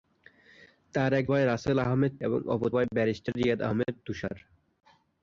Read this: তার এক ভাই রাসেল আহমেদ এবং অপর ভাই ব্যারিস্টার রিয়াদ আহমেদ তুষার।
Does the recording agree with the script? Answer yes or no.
yes